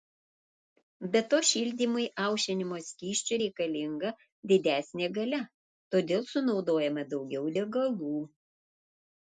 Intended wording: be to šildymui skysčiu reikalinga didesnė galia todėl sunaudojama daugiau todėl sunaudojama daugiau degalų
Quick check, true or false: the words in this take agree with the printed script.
false